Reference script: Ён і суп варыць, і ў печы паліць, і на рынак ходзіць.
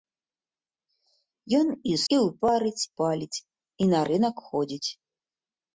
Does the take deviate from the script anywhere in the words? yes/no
yes